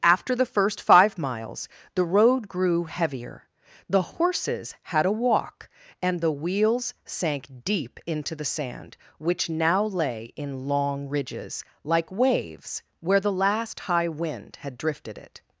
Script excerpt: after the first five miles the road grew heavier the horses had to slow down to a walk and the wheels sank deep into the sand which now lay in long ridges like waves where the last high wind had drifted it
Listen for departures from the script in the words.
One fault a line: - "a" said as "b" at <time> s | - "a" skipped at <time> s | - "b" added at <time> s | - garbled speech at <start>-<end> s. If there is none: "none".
- "to slow down to" skipped at 5.0 s